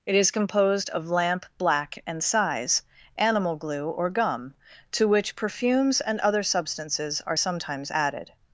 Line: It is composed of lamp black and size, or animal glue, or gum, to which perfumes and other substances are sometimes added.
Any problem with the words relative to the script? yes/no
yes